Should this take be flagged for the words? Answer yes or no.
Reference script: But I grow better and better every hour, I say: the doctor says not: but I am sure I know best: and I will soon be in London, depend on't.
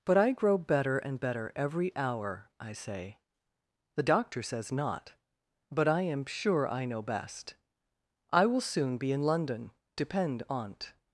yes